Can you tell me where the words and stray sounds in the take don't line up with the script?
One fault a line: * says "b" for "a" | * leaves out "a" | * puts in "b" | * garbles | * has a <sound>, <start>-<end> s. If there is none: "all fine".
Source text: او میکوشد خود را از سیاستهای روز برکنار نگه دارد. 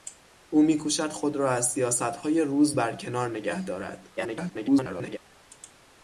* garbles